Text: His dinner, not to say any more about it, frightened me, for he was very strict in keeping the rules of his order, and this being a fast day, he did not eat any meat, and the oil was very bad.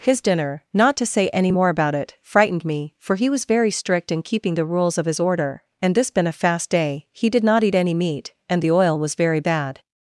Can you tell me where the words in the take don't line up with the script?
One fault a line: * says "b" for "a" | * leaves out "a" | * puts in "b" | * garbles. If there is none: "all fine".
* says "been" for "being"